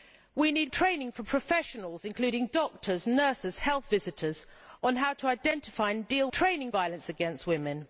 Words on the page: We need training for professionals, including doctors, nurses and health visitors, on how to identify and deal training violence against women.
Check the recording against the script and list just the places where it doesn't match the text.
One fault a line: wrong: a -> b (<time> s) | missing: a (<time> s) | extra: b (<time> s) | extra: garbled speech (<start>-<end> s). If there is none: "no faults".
no faults